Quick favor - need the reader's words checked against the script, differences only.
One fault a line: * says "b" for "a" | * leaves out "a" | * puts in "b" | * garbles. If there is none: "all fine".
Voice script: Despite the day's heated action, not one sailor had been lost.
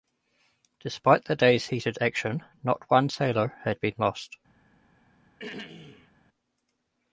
all fine